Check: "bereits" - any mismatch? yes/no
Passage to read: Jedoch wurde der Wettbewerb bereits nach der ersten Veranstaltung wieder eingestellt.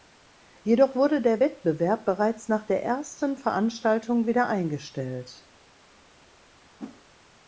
no